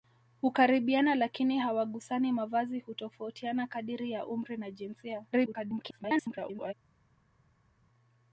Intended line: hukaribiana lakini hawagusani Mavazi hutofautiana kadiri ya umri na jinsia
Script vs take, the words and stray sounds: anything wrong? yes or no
yes